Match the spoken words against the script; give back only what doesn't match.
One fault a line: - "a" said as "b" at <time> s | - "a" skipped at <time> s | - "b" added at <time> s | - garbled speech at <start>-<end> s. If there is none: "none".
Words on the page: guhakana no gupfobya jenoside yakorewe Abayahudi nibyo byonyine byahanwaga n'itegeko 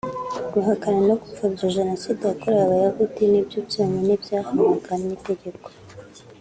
none